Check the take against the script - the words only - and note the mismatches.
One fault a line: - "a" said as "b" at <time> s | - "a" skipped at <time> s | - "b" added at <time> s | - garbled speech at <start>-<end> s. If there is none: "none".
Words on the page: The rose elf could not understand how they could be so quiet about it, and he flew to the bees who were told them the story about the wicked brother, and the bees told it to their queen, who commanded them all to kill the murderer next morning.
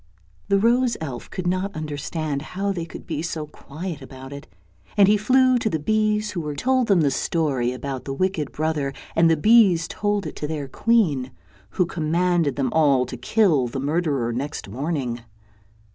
none